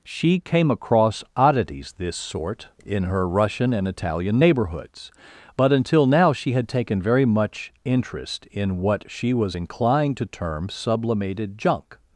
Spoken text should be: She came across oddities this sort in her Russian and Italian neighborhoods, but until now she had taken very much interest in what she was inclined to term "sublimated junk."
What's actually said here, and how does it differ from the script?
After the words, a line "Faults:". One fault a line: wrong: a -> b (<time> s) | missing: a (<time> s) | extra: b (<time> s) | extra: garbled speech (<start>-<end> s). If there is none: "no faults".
She came across oddities this sort in her Russian and Italian neighborhoods, but until now she had taken very much interest in what she was inclined to term "sublimated junk."
Faults:
no faults